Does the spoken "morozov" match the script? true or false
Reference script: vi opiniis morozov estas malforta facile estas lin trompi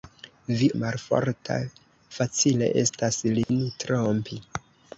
false